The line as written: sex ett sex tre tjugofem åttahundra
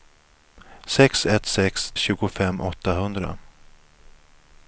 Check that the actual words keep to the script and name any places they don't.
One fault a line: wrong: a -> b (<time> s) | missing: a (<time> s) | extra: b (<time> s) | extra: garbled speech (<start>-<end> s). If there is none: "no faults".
missing: tre (1.9 s)